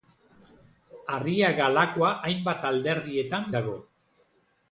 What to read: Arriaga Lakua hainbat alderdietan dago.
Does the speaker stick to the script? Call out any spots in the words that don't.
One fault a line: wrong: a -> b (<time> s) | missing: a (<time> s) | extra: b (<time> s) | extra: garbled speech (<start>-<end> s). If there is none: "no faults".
no faults